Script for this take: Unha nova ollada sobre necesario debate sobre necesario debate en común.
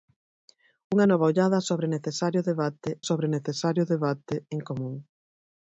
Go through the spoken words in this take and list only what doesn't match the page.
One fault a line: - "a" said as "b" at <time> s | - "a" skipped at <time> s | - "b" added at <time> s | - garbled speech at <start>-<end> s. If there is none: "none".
none